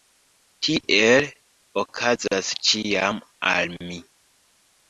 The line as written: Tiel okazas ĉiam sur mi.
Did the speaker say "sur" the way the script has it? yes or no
no